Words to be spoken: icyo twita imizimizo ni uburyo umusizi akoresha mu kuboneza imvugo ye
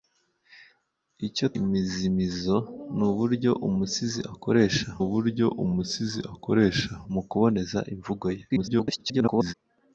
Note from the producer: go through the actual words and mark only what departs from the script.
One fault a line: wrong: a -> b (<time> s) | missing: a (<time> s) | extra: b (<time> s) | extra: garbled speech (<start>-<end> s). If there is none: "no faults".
missing: twita (1.5 s)
extra: uburyo umusizi akoresha (5.0 s)
extra: garbled speech (8.5-9.5 s)